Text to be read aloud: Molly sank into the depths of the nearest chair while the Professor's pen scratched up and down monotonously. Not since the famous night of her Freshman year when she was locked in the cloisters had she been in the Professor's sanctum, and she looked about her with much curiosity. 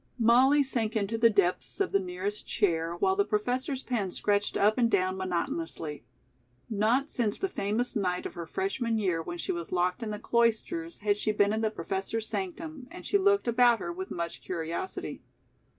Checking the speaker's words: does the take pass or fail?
pass